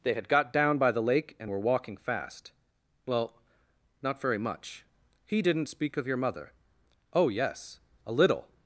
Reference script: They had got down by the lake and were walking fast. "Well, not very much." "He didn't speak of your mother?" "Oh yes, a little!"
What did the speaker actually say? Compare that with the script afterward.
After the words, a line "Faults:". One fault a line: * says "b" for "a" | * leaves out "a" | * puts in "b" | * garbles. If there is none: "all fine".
They had got down by the lake and were walking fast. "Well, not very much." "He didn't speak of your mother?" "Oh yes, a little!"
Faults:
all fine